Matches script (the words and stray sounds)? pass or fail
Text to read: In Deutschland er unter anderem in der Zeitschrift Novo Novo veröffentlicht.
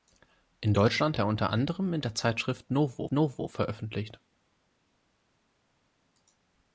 pass